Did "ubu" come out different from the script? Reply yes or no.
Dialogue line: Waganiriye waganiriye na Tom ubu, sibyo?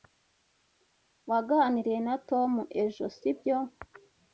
yes